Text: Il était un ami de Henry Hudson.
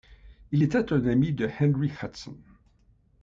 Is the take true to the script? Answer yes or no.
yes